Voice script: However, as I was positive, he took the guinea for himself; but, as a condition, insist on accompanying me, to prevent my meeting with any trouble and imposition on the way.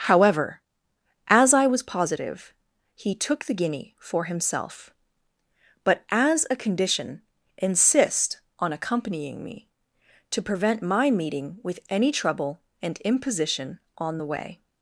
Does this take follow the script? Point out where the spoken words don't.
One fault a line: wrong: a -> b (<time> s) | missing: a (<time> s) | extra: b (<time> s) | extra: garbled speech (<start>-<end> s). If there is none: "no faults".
no faults